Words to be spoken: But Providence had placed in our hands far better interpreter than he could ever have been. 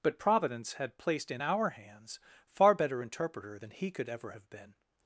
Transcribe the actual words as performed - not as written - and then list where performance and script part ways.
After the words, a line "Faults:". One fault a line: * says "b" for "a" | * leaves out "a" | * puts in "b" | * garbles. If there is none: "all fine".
But Providence had placed in our hands far better interpreter than he could ever have been.
Faults:
all fine